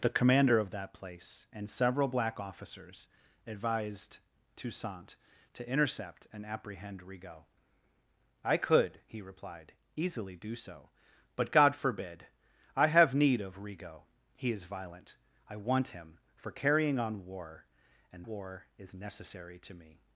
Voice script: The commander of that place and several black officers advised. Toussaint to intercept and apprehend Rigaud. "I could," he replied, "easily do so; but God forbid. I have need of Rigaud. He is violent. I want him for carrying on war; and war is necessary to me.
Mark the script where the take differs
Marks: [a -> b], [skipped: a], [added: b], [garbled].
The commander of that place and several black officers advised. Toussaint to intercept and apprehend Rigaud. "I could," he replied, "easily do so; but God forbid. I have need of Rigaud. He is violent. I want him for carrying on war; and war is necessary to me.